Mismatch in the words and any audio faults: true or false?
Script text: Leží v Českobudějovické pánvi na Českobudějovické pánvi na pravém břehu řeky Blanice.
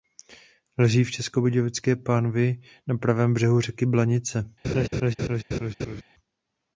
true